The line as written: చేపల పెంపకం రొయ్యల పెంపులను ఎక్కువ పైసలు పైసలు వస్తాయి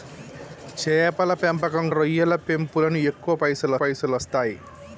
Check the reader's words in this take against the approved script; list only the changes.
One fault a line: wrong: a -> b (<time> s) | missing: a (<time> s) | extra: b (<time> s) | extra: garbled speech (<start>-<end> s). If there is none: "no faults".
no faults